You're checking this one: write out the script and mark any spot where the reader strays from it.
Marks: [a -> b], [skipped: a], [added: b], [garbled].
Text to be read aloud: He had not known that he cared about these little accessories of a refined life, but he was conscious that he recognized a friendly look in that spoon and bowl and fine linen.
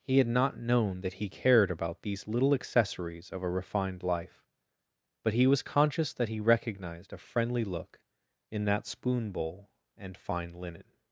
He had not known that he cared about these little accessories of a refined life, but he was conscious that he recognized a friendly look in that spoon [skipped: and] bowl and fine linen.